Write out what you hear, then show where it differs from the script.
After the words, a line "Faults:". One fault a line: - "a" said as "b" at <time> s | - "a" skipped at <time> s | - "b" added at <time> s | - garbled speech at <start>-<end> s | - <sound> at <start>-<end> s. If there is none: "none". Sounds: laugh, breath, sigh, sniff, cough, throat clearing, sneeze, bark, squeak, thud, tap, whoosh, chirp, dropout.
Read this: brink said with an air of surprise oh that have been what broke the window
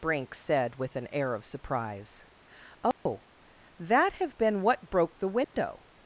brink said with an air of surprise oh that have been what broke the window
Faults:
- dropout at 2.9-3.1 s
- dropout at 5.4-5.5 s